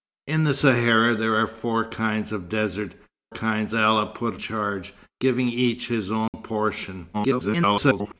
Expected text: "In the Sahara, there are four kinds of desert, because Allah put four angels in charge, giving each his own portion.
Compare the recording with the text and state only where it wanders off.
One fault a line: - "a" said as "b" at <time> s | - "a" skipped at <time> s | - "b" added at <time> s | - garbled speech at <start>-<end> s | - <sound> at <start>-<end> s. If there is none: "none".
- "because" said as "kinds" at 3.3 s
- "four angels in" skipped at 4.4 s
- dropout at 6.3-6.3 s
- garbled speech at 7.1-8.1 s